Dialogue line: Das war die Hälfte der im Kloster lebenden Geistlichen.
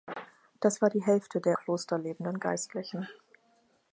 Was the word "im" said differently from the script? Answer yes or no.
yes